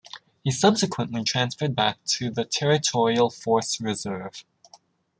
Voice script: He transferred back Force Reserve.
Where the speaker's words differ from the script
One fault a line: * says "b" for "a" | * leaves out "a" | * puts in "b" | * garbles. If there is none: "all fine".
* puts in "subsequently"
* puts in "to the Territorial"